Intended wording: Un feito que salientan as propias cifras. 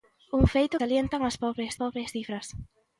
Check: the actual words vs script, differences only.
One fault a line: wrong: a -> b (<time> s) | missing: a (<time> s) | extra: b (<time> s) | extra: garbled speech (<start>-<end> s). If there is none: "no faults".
missing: que (0.8 s)
extra: propias (1.8 s)